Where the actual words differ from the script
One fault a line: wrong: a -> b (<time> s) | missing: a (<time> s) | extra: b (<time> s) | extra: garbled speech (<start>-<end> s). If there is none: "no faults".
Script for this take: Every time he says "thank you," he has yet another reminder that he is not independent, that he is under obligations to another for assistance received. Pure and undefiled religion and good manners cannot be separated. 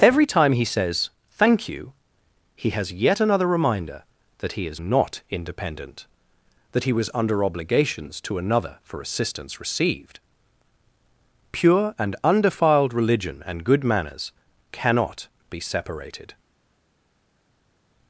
wrong: is -> was (6.9 s)